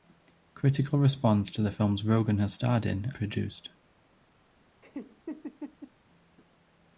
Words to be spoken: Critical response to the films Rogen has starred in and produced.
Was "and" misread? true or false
true